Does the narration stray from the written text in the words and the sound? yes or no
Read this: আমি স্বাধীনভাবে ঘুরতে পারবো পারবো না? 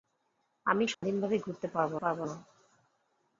yes